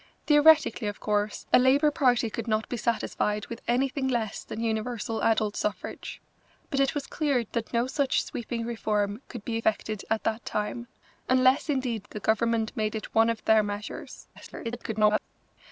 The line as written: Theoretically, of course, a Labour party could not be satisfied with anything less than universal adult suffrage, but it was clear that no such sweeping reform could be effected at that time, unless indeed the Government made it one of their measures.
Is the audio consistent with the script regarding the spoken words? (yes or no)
no